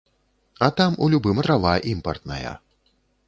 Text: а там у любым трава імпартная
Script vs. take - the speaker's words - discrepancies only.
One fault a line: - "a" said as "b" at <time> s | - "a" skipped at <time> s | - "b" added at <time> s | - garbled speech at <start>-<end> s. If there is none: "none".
none